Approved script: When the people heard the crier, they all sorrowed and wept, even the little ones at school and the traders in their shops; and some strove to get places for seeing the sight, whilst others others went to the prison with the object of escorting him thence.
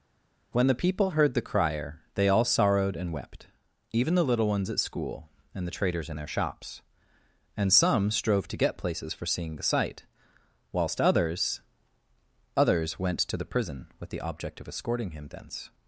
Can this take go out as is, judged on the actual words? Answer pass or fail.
pass